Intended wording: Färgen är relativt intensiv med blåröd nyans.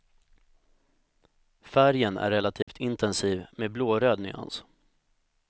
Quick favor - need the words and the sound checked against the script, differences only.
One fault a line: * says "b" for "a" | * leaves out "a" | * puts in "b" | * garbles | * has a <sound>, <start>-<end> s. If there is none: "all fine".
* has a dropout, 2.6-2.7 s